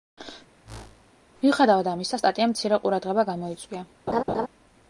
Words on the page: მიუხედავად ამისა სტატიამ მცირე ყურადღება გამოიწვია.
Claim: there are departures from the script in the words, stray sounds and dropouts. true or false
true